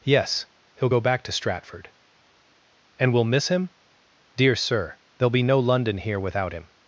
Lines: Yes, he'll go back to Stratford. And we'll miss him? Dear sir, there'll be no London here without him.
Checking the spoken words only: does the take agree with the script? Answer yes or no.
yes